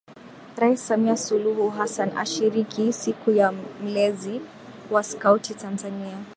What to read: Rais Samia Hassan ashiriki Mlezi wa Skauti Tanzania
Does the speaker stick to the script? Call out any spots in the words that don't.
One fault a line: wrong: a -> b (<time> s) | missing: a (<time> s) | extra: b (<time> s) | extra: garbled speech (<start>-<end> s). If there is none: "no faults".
extra: Suluhu (1.2 s)
extra: Siku ya (2.9 s)